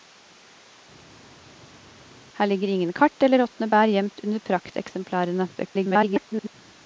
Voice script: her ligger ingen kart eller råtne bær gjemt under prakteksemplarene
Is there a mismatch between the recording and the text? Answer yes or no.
yes